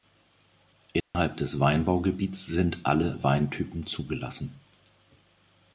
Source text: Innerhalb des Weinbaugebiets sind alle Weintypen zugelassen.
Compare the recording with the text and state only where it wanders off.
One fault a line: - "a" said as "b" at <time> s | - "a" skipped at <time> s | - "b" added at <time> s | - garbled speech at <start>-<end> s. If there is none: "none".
none